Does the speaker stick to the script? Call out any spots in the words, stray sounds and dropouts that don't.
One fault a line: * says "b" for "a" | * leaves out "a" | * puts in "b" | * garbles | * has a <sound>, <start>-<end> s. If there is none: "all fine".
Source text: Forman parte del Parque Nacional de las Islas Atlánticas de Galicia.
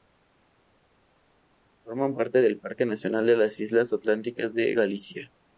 all fine